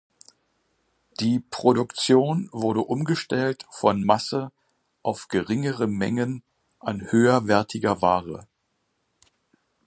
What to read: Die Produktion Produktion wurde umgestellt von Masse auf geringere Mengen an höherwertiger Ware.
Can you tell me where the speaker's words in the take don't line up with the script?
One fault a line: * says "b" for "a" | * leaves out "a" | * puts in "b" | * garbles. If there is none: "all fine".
* leaves out "Produktion"